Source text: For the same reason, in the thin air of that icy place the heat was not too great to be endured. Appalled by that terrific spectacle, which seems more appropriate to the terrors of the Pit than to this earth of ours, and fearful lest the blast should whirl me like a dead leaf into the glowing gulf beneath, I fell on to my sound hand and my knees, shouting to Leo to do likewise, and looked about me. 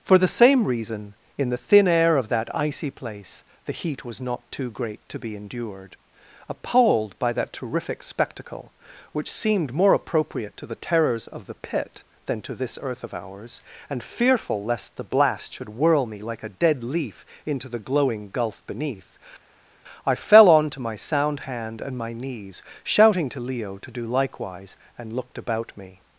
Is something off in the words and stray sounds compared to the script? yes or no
yes